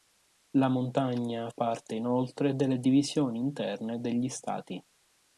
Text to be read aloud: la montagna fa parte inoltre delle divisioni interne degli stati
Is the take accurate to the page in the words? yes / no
no